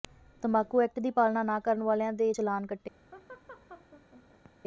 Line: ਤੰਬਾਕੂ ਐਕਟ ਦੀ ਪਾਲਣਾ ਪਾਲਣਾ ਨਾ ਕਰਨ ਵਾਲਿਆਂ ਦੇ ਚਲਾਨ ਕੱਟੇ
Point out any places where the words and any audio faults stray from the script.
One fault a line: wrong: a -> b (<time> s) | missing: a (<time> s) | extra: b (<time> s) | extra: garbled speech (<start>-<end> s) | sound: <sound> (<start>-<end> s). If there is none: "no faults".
missing: ਪਾਲਣਾ (1.4 s)
sound: laugh (3.1-4.5 s)